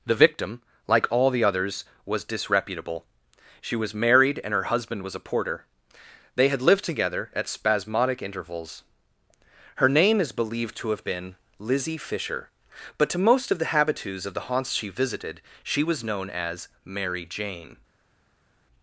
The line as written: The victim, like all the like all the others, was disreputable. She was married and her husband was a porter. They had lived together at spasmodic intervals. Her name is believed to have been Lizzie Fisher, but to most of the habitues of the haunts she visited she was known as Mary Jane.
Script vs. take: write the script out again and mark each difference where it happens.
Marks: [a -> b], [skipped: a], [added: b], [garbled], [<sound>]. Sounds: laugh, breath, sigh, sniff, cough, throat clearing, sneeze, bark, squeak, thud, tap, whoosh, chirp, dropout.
The victim, like all the [skipped: like all the] others, was disreputable. She was married and her husband was a porter. They had lived together at spasmodic intervals. Her name is believed to have been Lizzie Fisher, but to most of the habitues of the haunts she visited she was known as Mary Jane.